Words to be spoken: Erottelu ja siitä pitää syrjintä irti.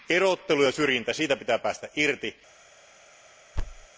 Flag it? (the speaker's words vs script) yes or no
yes